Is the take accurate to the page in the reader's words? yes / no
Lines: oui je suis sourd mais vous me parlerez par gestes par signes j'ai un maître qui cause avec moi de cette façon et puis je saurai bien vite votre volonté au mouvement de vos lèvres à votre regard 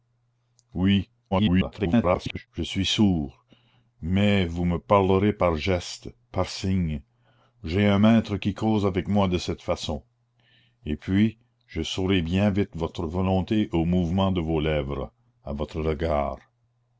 no